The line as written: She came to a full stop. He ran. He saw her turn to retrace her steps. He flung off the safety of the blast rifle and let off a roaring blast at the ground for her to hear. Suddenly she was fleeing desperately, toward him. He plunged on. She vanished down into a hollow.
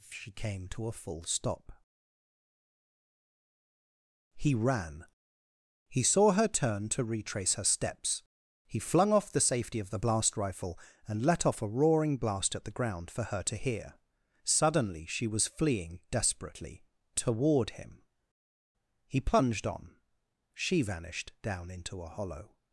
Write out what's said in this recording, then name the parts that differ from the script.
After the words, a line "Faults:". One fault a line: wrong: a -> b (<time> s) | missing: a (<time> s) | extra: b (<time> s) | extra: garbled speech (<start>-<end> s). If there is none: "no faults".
She came to a full stop. He ran. He saw her turn to retrace her steps. He flung off the safety of the blast rifle and let off a roaring blast at the ground for her to hear. Suddenly she was fleeing desperately, toward him. He plunged on. She vanished down into a hollow.
Faults:
no faults